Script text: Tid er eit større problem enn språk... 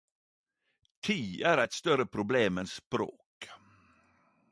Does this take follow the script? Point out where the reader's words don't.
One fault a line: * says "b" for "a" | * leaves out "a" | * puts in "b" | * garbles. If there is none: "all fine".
all fine